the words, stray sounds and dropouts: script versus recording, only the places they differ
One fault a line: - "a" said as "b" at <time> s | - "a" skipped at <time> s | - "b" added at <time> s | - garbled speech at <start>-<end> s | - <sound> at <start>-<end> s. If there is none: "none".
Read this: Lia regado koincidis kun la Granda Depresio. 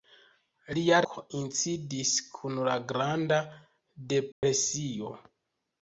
- "regado" skipped at 1.0 s
- dropout at 4.3-4.4 s